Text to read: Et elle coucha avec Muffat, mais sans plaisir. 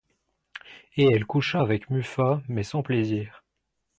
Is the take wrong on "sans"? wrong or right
right